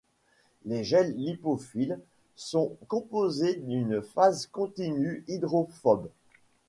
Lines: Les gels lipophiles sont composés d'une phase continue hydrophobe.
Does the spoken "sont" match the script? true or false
true